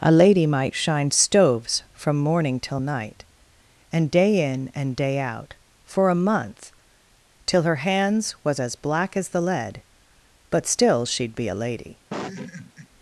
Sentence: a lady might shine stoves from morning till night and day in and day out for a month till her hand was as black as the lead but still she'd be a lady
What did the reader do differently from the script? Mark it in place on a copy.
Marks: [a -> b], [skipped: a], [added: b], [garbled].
a lady might shine stoves from morning till night and day in and day out for a month till her [hand -> hands] was as black as the lead but still she'd be a lady